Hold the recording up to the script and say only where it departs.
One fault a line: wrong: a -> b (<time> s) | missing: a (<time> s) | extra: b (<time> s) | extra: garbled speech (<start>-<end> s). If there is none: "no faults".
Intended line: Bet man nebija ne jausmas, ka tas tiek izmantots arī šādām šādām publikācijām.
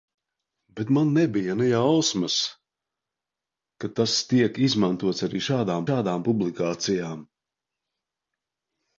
no faults